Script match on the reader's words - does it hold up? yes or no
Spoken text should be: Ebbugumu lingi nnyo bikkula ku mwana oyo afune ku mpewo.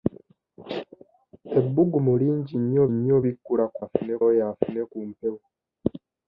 no